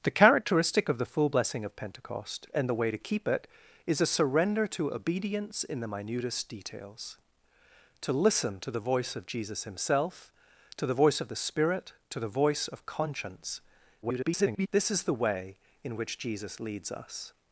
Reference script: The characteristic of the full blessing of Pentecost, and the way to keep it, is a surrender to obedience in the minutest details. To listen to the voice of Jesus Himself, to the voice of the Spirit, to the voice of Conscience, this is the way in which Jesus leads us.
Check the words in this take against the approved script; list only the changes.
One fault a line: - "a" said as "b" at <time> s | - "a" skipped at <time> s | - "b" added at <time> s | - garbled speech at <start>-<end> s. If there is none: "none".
- garbled speech at 14.0-14.7 s